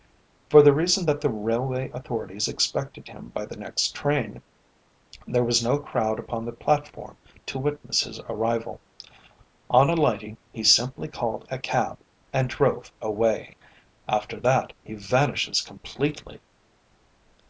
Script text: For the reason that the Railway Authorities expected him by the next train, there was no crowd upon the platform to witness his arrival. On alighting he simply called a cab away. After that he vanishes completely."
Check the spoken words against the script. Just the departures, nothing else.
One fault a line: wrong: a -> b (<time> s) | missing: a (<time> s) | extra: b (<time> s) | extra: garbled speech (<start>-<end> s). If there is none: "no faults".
extra: and drove (12.3 s)